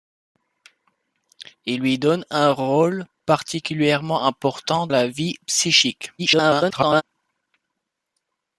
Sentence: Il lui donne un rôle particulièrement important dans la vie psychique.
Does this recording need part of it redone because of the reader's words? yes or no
yes